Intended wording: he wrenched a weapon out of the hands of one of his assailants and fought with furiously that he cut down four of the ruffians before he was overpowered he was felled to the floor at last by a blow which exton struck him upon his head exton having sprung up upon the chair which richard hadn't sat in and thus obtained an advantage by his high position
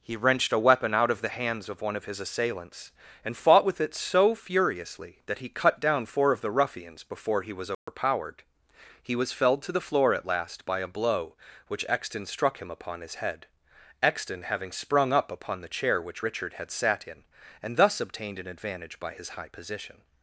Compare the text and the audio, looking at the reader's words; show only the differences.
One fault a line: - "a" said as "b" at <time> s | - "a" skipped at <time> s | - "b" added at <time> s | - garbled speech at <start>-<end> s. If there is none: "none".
- "it so" added at 3.8 s
- "hadn't" said as "had" at 16.5 s